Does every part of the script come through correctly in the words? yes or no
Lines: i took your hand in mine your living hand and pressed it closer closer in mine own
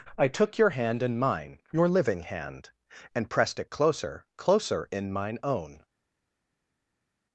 yes